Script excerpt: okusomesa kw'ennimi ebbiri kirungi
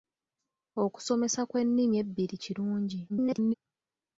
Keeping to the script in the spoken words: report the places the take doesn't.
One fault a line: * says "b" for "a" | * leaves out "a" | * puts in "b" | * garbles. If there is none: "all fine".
* garbles